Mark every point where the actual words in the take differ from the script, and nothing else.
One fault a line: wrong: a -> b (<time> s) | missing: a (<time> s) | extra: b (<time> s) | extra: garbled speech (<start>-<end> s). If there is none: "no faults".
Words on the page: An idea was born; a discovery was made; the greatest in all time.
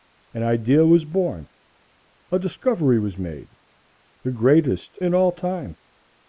no faults